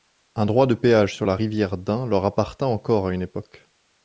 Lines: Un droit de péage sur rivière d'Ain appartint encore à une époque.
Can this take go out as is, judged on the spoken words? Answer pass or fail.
fail